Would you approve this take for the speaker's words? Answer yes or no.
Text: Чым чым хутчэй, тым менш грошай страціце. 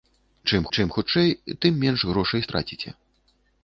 yes